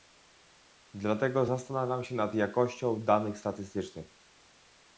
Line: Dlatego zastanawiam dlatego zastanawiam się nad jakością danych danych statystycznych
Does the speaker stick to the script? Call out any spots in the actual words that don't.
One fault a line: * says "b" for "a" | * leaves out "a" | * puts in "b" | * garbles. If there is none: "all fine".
* leaves out "dlatego zastanawiam"
* leaves out "danych"